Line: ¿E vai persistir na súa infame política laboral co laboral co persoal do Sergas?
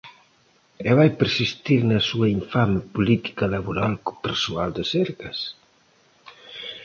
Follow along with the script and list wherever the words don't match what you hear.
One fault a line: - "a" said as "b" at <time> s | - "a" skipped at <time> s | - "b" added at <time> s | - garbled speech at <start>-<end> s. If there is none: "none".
- "laboral co" skipped at 4.2 s